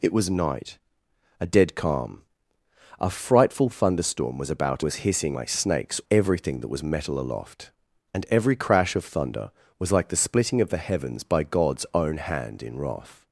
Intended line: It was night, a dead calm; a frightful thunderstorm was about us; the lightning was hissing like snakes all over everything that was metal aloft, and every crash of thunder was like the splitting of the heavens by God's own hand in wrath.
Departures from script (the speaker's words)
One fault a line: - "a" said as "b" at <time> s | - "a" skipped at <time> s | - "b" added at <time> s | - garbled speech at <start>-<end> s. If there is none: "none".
- "us the lightning" skipped at 4.8 s
- "all over" skipped at 6.0 s